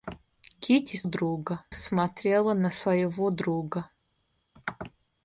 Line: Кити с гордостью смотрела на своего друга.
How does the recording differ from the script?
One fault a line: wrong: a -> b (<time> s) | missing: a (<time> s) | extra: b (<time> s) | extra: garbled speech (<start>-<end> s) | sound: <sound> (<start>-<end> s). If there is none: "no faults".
wrong: гордостью -> друга (1.0 s)